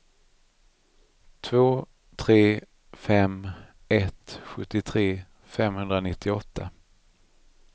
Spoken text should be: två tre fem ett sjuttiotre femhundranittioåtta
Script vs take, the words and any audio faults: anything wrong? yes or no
no